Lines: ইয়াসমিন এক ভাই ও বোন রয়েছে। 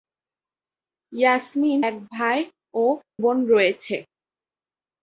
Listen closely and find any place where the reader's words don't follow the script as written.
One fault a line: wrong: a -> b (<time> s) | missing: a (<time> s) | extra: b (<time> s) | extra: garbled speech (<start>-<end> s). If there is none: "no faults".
no faults